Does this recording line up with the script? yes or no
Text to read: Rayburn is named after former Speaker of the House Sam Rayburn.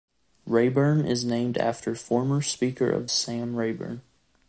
no